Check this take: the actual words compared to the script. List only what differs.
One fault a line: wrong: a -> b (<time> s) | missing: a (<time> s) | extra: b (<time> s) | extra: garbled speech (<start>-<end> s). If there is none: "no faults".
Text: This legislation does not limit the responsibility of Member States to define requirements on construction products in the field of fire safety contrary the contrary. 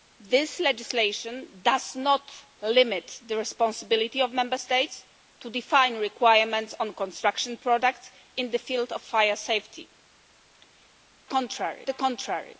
no faults